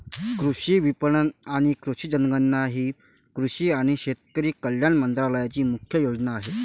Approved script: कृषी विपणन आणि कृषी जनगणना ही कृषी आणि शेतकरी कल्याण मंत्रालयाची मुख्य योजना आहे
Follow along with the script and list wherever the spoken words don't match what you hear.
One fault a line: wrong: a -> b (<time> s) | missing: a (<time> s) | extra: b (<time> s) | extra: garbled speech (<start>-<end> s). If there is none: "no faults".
no faults